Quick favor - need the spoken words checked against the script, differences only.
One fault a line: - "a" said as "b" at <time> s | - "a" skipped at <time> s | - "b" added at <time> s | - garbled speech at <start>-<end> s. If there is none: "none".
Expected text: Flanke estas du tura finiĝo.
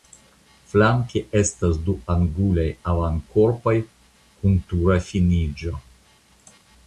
- "angulaj avankorpoj kun" added at 2.1 s